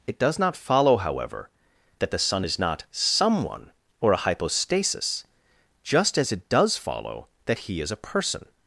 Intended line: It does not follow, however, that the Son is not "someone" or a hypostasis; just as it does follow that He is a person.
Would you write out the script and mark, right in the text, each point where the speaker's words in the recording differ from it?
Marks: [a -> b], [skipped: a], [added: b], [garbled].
It does not follow, however, that the Son is not "someone" or a hypostasis; just as it does follow that He is a person.